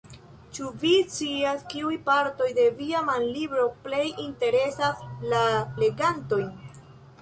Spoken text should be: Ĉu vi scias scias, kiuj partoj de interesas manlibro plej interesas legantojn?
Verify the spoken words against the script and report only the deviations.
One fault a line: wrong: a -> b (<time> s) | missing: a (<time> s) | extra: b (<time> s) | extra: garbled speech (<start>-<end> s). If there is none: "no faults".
missing: scias (1.7 s)
wrong: interesas -> via (2.8 s)
extra: la (5.4 s)